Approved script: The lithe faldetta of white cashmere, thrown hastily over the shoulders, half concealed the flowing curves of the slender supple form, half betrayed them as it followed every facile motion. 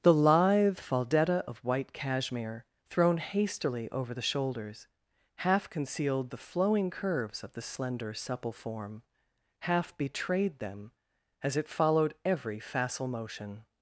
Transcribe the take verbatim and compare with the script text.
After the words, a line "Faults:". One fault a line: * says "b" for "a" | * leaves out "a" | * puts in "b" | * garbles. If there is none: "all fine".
The lithe faldetta of white cashmere, thrown hastily over the shoulders, half concealed the flowing curves of the slender supple form, half betrayed them as it followed every facile motion.
Faults:
all fine